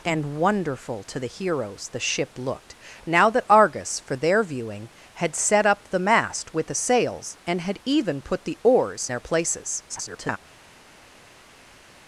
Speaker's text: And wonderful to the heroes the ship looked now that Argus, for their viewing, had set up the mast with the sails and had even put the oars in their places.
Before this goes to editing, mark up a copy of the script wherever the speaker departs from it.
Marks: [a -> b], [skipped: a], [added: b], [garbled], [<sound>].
And wonderful to the heroes the ship looked now that Argus, for their viewing, had set up the mast with the sails and had even put the oars [skipped: in] their places. [garbled]